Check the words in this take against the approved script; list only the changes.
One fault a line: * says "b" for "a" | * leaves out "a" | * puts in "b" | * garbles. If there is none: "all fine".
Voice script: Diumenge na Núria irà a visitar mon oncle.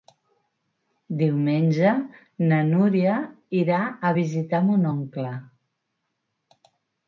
all fine